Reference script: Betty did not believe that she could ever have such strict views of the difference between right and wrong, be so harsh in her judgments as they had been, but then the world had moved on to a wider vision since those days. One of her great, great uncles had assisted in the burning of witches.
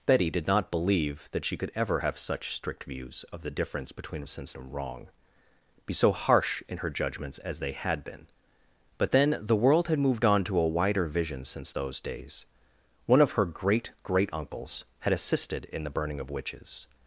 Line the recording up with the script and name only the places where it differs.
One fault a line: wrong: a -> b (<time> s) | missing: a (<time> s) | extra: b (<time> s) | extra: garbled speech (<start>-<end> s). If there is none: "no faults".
wrong: right -> since (4.3 s)